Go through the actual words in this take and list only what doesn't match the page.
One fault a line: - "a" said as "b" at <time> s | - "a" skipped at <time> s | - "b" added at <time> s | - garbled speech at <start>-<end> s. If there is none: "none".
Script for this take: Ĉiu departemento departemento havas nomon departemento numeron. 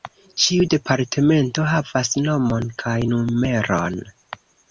- "departemento" skipped at 1.6 s
- "departemento" said as "kaj" at 2.8 s